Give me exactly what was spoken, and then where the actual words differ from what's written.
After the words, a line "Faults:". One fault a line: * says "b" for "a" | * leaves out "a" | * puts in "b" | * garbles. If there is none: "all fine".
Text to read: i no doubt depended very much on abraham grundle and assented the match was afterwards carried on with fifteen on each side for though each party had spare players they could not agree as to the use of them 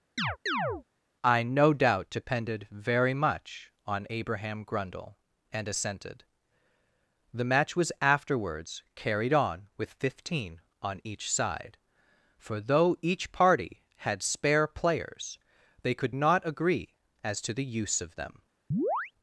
i no doubt depended very much on abraham grundle and assented the match was afterwards carried on with fifteen on each side for though each party had spare players they could not agree as to the use of them
Faults:
all fine